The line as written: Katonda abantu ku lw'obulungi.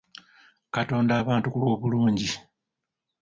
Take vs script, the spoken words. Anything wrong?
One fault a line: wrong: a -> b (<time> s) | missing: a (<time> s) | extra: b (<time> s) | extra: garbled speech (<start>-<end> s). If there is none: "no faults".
no faults